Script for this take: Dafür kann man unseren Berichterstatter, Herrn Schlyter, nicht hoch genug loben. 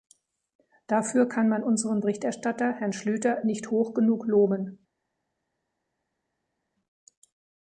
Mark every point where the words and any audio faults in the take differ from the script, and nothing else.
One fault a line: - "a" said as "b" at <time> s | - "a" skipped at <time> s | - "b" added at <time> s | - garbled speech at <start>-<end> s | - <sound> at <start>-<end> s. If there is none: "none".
none